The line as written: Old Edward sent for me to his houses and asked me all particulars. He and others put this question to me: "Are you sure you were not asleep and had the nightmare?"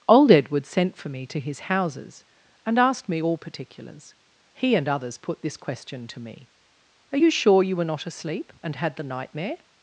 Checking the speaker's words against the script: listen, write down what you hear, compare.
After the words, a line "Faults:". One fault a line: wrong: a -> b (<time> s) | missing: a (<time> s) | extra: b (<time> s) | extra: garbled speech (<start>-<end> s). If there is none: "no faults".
Old Edward sent for me to his houses and asked me all particulars. He and others put this question to me: "Are you sure you were not asleep and had the nightmare?"
Faults:
no faults